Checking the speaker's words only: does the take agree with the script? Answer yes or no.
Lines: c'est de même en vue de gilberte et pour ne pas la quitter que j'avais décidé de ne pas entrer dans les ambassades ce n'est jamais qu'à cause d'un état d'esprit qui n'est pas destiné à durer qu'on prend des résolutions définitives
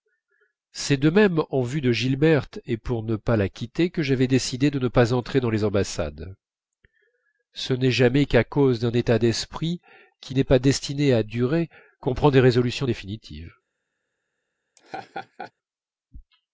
yes